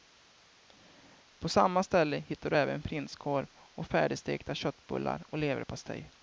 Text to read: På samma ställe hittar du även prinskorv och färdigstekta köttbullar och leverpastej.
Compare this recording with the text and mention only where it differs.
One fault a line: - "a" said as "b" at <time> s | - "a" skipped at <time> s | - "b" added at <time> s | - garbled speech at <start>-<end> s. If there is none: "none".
none